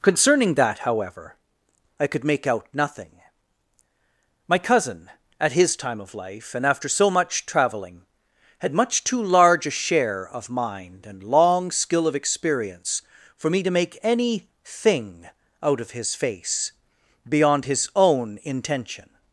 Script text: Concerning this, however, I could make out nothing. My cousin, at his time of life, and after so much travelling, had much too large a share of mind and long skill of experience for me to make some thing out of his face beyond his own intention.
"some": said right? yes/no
no